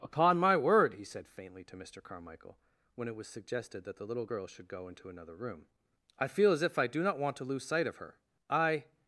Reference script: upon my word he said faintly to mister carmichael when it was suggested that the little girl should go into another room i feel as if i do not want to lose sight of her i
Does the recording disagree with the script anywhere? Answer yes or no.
no